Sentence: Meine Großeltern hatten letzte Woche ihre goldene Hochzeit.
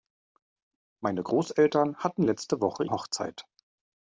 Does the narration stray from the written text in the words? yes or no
yes